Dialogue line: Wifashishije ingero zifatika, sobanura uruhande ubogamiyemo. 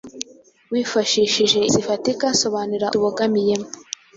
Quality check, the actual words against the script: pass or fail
fail